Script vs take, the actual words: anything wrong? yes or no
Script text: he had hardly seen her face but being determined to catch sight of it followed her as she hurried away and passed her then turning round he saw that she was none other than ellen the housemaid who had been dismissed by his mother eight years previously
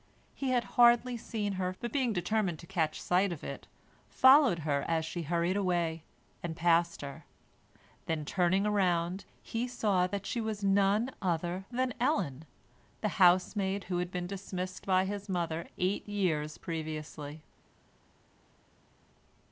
yes